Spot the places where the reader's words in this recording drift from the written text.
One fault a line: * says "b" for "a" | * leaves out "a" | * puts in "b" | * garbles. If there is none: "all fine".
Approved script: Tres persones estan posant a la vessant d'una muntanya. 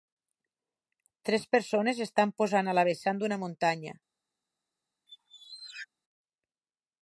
all fine